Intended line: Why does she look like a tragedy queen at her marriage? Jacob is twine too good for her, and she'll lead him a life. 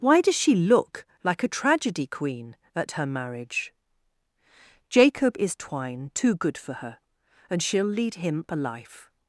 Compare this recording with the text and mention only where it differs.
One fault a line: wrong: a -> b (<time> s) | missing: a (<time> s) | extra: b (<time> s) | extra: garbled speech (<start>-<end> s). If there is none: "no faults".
no faults